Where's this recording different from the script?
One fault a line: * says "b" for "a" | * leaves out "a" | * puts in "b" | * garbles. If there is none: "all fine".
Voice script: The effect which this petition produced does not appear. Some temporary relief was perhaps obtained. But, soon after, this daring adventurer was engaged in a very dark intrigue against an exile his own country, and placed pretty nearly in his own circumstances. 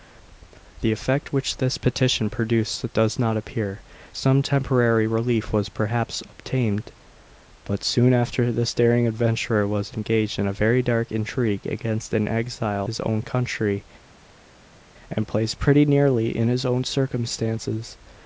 all fine